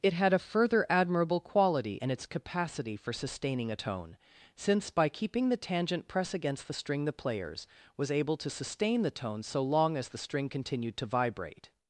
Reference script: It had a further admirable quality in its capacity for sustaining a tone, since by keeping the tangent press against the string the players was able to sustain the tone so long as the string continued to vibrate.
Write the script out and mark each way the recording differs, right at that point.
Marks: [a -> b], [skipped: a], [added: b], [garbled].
It had a further admirable quality in its capacity for sustaining a tone, since by keeping the tangent press against the string the players was able to sustain the tone so long as the string continued to vibrate.